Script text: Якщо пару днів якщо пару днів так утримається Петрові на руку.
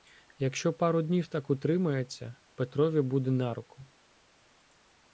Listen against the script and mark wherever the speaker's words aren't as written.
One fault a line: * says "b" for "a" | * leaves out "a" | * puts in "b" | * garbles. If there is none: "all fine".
* leaves out "якщо пару днів"
* puts in "буде"